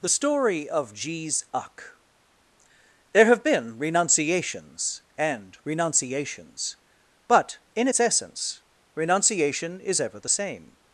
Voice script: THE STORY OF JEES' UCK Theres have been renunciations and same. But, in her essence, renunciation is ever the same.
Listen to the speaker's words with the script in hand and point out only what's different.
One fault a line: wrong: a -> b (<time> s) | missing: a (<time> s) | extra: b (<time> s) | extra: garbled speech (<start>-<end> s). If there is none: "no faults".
wrong: Theres -> There (3.1 s)
wrong: same -> renunciations (5.7 s)
wrong: her -> its (7.9 s)